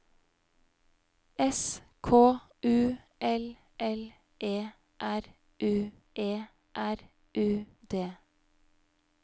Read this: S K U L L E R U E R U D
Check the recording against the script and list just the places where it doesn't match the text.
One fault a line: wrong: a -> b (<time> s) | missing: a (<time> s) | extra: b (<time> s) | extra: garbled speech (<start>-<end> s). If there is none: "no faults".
no faults